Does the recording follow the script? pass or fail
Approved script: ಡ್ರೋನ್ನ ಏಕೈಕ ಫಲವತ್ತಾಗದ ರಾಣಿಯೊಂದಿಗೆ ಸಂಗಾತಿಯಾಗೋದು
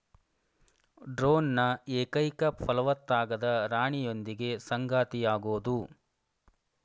pass